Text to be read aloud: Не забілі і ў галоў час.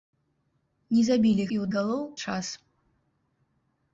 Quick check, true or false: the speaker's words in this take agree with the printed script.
true